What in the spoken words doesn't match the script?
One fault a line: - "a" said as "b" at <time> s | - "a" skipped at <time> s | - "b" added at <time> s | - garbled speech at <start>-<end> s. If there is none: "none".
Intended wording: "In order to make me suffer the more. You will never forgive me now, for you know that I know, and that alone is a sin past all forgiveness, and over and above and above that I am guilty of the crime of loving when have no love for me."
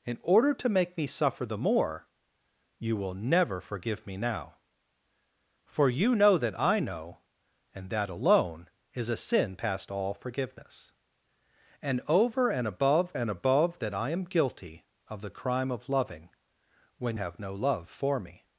none